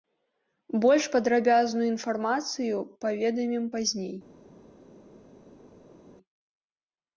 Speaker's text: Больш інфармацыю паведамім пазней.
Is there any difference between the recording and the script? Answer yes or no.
yes